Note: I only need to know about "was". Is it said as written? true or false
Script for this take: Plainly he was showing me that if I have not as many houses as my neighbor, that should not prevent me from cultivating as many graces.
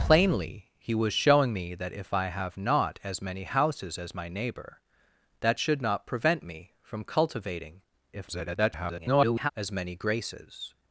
true